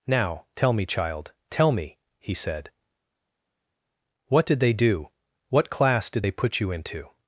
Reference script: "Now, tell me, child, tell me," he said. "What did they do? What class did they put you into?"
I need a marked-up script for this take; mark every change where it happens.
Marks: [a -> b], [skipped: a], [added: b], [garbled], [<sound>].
"Now, tell me, child, tell me," he said. "What did they do? What class did they put you into?"